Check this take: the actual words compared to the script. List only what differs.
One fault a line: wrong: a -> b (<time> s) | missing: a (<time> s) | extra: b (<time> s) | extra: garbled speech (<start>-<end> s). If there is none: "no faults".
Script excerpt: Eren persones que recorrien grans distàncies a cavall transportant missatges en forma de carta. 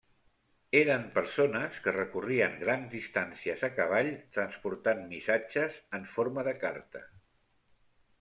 no faults